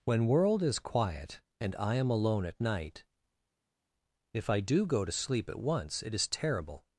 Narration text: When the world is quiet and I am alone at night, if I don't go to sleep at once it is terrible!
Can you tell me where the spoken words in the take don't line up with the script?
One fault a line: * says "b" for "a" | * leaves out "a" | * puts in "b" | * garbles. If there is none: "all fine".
* leaves out "the"
* says "do" for "don't"